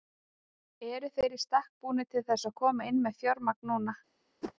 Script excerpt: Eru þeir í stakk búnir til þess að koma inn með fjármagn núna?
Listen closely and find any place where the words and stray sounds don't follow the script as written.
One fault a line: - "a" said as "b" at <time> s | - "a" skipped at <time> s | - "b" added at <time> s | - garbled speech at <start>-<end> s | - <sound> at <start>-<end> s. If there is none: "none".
- whoosh at 4.4-4.5 s